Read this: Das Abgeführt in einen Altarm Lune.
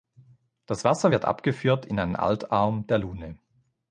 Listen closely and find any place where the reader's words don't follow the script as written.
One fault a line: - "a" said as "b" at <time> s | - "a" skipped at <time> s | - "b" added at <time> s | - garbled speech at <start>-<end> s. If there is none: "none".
- "Wasser wird" added at 0.8 s
- "der" added at 2.9 s